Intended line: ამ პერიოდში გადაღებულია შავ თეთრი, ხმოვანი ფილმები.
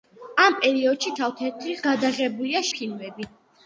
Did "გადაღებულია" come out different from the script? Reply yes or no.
yes